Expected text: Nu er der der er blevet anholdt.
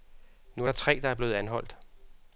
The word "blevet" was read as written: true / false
true